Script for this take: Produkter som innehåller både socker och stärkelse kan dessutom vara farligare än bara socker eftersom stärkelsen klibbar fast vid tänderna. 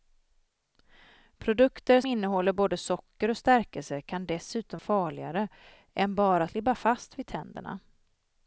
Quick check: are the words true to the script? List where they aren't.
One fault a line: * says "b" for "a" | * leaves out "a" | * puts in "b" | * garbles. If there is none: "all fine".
* leaves out "som"
* leaves out "vara"
* leaves out "socker eftersom stärkelsen"